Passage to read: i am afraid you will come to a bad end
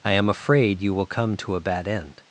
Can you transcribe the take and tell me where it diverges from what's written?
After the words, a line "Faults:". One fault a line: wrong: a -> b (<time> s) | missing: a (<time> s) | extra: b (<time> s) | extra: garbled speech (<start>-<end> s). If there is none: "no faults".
i am afraid you will come to a bad end
Faults:
no faults